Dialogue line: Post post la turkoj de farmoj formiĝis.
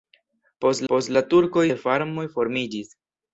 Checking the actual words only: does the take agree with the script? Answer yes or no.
yes